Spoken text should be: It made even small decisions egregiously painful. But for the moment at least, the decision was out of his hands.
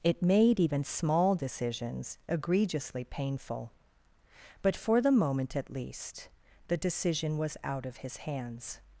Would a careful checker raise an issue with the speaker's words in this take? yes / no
no